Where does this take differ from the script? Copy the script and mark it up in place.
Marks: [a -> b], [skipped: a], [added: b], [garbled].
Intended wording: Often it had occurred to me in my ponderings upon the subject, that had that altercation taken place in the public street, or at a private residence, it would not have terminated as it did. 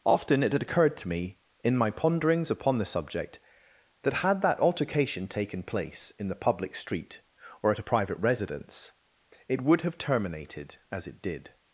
Often it had occurred to me in my ponderings upon the subject, that had that altercation taken place in the public street, or at a private residence, it would [skipped: not] have terminated as it did.